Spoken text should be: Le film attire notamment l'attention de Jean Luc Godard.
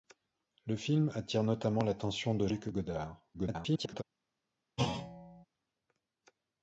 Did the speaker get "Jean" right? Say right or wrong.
wrong